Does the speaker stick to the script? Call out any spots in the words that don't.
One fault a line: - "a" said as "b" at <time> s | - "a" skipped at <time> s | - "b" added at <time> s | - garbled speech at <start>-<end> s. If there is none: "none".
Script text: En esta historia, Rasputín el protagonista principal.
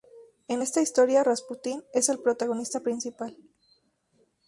- "es" added at 1.9 s